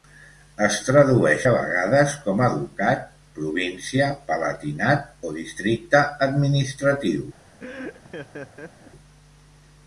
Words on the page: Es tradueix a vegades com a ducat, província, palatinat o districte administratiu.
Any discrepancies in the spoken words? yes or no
no